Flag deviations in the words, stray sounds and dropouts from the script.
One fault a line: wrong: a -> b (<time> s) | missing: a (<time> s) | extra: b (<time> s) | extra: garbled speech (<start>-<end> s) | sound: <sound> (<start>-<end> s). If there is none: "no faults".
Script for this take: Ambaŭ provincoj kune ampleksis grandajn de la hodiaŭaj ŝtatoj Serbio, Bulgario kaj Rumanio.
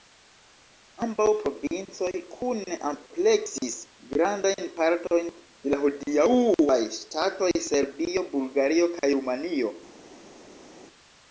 extra: partojn (4.8 s)